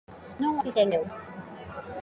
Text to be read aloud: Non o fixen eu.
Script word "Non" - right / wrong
right